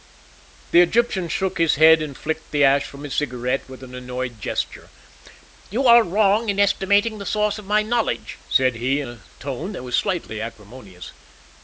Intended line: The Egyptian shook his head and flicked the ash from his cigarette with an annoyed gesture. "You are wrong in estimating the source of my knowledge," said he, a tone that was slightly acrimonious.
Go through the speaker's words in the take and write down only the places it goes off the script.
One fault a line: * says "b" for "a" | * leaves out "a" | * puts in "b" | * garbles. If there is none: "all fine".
all fine